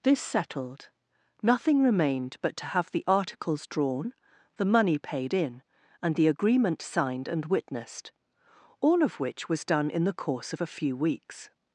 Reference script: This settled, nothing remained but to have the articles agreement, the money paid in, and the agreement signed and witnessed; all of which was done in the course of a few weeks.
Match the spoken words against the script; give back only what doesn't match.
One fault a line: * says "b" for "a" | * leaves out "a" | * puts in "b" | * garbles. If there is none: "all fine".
* says "drawn" for "agreement"